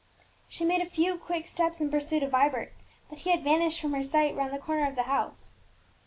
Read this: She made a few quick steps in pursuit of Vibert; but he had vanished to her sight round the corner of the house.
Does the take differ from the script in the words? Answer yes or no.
yes